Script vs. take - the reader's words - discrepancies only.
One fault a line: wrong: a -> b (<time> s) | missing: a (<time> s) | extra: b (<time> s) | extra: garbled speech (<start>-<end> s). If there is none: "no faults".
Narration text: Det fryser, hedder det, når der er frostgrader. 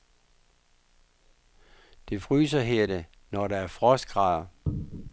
no faults